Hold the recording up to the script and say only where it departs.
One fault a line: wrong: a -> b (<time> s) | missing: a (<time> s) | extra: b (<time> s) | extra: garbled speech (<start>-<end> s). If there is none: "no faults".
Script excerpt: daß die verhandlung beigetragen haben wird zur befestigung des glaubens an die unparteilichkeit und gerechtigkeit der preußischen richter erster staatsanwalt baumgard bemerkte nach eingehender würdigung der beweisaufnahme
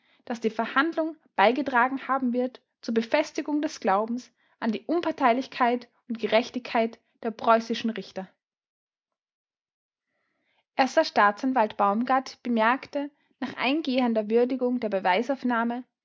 no faults